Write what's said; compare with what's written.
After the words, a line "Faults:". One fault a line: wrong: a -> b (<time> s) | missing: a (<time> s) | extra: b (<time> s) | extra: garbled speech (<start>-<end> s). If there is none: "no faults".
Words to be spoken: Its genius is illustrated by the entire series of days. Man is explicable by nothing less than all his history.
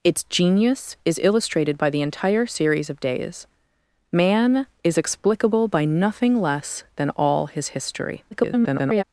Its genius is illustrated by the entire series of days. Man is explicable by nothing less than all his history. [garbled]
Faults:
extra: garbled speech (8.3-9.0 s)